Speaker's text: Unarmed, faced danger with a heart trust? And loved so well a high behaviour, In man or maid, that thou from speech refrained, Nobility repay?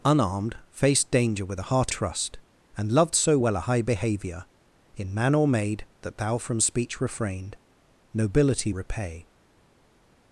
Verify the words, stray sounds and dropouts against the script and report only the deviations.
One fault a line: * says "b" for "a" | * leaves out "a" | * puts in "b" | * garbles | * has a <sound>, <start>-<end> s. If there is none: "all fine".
all fine